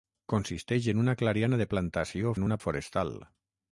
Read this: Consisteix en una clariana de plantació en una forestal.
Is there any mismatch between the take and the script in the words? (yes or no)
no